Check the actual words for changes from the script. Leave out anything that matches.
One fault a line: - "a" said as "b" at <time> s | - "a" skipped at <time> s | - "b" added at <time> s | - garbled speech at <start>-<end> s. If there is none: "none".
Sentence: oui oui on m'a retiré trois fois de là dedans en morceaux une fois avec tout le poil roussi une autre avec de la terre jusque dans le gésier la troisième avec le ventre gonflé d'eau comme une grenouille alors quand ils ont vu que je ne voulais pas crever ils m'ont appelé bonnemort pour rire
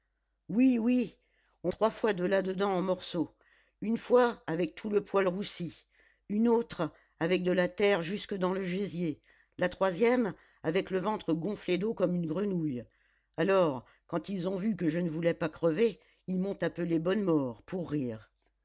- "m'a retiré" skipped at 1.7 s